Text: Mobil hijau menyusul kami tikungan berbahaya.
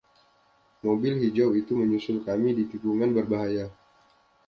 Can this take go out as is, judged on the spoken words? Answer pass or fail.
fail